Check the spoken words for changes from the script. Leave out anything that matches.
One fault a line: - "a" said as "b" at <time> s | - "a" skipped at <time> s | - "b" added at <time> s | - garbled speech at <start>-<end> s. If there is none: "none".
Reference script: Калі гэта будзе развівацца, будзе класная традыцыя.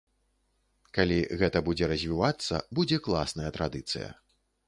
none